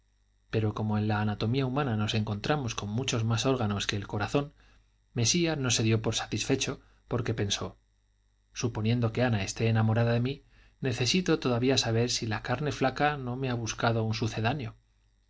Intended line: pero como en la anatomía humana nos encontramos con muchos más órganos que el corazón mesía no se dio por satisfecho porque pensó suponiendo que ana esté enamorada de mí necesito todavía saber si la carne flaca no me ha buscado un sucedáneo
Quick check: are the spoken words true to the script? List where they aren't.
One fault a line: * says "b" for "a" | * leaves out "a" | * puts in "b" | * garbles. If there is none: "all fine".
all fine